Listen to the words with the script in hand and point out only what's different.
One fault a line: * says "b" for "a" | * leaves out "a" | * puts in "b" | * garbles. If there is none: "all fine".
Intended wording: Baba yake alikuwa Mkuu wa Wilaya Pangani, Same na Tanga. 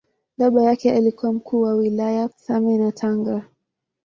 * leaves out "Pangani"